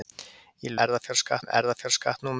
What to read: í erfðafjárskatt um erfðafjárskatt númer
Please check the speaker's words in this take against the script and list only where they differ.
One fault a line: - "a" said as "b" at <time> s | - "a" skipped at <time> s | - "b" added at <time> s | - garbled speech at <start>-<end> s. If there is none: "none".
none